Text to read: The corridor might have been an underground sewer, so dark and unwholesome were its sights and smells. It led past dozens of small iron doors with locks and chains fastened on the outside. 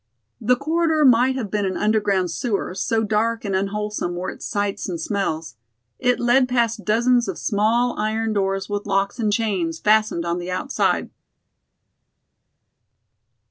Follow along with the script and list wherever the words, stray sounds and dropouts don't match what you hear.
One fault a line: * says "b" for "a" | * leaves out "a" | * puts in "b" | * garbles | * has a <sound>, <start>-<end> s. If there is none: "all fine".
all fine